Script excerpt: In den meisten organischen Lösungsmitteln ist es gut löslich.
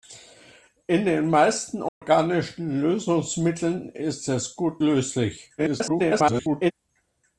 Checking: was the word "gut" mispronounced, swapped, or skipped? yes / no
no